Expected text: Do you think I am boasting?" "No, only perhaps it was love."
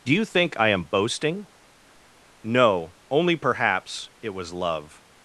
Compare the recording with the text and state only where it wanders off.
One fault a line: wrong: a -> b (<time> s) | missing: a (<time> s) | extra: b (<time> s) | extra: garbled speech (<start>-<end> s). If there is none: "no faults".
no faults